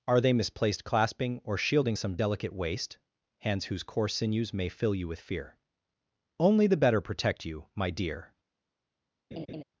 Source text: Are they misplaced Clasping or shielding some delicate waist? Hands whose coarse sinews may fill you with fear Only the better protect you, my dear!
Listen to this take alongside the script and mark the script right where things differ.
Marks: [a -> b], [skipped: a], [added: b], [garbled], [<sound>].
Are they misplaced Clasping or shielding some delicate waist? Hands whose coarse sinews may fill you with fear Only the better protect you, my dear! [laugh]